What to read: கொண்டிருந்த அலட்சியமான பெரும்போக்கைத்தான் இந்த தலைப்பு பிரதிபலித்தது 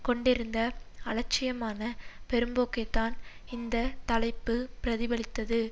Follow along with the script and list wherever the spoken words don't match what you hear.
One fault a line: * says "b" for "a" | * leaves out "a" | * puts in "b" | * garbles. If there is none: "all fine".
all fine